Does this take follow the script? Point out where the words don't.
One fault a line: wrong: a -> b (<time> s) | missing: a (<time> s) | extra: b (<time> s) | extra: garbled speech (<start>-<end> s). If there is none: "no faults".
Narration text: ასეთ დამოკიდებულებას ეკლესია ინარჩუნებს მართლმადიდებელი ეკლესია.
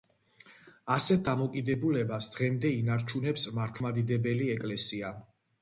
wrong: ეკლესია -> დღემდე (2.4 s)